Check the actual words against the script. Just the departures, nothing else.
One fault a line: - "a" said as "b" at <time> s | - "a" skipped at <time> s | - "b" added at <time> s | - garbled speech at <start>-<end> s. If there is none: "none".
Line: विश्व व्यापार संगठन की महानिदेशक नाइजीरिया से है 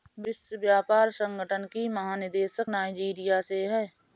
none